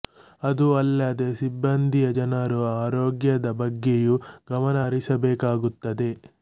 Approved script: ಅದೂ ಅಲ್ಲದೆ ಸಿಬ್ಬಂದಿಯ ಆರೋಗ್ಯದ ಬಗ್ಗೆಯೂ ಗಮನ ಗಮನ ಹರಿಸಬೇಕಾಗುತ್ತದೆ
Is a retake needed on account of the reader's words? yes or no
yes